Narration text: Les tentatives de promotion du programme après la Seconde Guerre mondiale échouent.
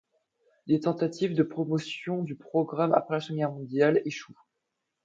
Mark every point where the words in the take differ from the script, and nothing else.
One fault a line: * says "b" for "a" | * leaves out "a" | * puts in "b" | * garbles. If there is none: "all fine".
all fine